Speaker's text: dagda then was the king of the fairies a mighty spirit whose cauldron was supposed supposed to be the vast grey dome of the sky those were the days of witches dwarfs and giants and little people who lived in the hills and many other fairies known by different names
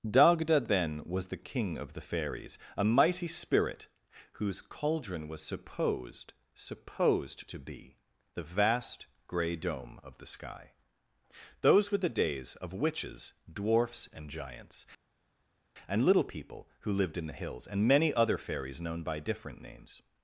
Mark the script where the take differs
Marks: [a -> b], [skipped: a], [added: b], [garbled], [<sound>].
dagda then was the king of the fairies a mighty spirit whose cauldron was supposed supposed to be the vast grey dome of the sky those were the days of witches dwarfs and giants and little people who lived in the hills and many other fairies known by different names